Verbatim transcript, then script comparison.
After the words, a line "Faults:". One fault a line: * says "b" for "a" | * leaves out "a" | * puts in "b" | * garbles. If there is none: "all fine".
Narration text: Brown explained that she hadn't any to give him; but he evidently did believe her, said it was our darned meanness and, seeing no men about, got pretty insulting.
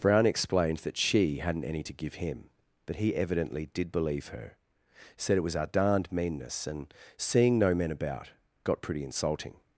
Brown explained that she hadn't any to give him; but he evidently did believe her, said it was our darned meanness and, seeing no men about, got pretty insulting.
Faults:
all fine